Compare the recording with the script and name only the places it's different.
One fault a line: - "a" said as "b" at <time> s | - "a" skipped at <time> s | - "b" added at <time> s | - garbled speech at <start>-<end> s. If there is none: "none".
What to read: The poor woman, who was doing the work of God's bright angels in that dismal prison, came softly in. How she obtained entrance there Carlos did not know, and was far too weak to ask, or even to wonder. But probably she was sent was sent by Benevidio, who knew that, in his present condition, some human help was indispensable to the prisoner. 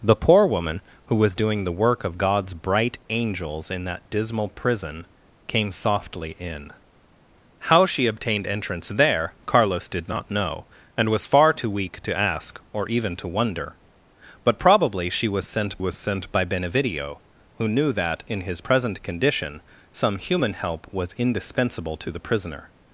none